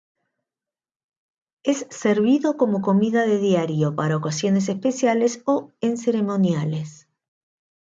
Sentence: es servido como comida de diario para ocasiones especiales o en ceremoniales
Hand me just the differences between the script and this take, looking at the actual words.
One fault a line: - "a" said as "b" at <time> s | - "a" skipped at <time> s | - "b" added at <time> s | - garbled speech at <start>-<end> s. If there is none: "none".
none